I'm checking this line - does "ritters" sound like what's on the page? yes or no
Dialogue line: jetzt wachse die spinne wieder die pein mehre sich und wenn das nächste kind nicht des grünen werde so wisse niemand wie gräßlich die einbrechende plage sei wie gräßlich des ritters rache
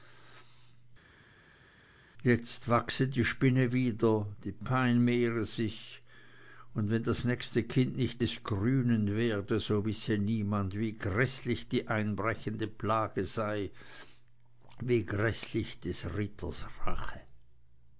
yes